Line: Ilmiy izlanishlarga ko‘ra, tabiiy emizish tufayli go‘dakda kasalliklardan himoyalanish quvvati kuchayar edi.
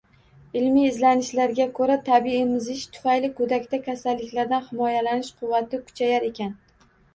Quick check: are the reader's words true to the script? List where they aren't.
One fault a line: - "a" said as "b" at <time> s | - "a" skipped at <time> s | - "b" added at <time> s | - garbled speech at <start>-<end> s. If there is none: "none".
- "edi" said as "ekan" at 6.3 s